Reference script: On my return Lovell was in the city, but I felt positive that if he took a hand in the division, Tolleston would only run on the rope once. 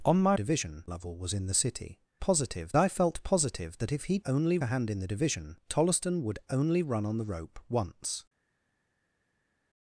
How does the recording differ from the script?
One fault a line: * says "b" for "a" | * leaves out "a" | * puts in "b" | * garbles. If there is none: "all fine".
* says "division" for "return"
* says "positive" for "but"
* says "only" for "took"